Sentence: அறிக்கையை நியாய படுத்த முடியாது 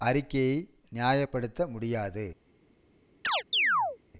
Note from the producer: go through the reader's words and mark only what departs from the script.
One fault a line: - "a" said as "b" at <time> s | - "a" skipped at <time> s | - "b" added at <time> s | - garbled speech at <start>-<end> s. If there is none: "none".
none